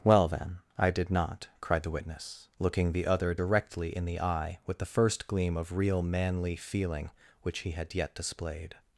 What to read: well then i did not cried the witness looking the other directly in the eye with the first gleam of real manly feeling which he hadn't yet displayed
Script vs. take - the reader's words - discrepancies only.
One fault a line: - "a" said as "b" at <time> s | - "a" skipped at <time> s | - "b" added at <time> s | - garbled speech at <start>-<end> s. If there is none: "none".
- "hadn't" said as "had" at 7.7 s